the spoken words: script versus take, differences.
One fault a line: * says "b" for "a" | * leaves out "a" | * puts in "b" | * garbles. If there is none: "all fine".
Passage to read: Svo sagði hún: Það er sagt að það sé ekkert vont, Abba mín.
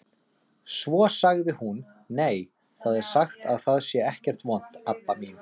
* puts in "Nei"